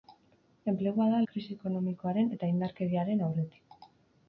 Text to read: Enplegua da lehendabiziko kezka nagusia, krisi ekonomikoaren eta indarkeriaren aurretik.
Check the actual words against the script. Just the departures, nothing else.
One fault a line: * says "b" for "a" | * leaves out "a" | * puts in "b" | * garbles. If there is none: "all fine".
* leaves out "lehendabiziko kezka nagusia"